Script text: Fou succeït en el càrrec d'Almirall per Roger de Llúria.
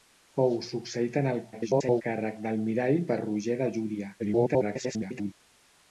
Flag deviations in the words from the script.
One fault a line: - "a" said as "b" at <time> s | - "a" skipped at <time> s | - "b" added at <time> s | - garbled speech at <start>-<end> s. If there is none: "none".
- garbled speech at 1.5-2.0 s
- garbled speech at 4.2-5.3 s